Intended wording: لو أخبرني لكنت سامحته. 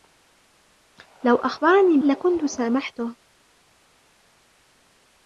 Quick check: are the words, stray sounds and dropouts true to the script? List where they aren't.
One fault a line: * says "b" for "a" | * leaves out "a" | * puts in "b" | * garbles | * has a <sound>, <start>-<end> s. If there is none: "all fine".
all fine